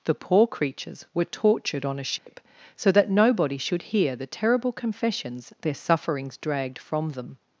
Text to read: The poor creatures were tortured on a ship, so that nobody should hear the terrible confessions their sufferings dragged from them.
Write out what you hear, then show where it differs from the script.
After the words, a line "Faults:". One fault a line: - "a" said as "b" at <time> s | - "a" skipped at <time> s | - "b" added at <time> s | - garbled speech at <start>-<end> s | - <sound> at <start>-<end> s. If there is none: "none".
The poor creatures were tortured on a ship, so that nobody should hear the terrible confessions their sufferings dragged from them.
Faults:
- dropout at 2.2-2.3 s